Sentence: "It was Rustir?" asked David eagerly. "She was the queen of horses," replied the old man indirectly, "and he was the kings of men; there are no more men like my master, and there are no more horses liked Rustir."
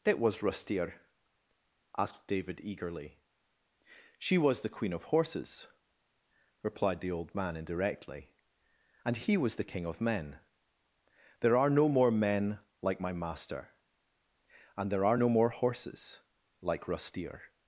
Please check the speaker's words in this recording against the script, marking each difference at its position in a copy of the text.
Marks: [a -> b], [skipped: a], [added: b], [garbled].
"It was Rustir?" asked David eagerly. "She was the queen of horses," replied the old man indirectly, "and he was the [kings -> king] of men; there are no more men like my master, and there are no more horses [liked -> like] Rustir."